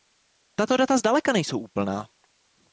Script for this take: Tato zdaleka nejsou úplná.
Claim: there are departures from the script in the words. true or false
true